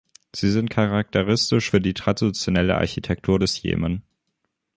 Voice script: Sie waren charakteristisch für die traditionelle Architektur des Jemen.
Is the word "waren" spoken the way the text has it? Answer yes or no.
no